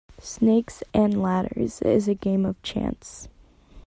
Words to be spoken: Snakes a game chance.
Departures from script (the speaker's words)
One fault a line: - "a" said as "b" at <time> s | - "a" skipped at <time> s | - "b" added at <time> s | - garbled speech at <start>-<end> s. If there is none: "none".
- "and ladders is" added at 0.9 s
- "of" added at 2.4 s